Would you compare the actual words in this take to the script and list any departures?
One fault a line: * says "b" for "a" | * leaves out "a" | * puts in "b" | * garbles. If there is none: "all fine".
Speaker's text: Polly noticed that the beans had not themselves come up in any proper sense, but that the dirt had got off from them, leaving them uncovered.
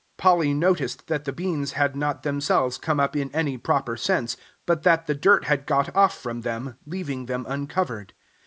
all fine